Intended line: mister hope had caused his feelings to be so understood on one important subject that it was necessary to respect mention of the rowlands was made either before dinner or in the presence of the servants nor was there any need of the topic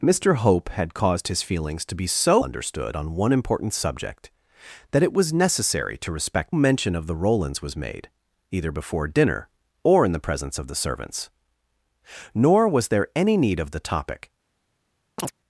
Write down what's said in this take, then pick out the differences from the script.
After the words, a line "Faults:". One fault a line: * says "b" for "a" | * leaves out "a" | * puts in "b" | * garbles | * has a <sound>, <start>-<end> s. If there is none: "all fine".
mister hope had caused his feelings to be so understood on one important subject that it was necessary to respect mention of the rowlands was made either before dinner or in the presence of the servants nor was there any need of the topic
Faults:
* has a chirp, 15.2-15.3 s